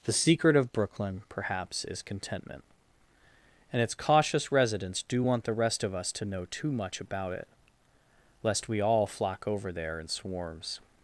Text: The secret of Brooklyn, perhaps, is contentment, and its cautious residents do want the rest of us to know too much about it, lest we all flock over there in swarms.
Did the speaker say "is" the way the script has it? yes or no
yes